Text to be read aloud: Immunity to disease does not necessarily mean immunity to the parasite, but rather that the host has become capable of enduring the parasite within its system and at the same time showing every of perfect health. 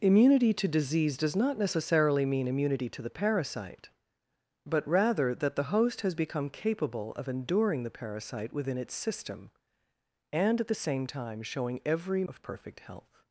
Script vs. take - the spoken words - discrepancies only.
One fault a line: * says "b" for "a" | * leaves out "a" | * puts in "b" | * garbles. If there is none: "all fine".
all fine